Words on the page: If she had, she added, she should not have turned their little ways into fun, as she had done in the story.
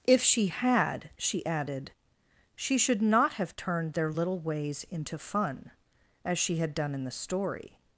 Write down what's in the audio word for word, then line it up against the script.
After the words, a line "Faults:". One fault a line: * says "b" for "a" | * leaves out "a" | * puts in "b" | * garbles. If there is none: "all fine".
If she had, she added, she should not have turned their little ways into fun, as she had done in the story.
Faults:
all fine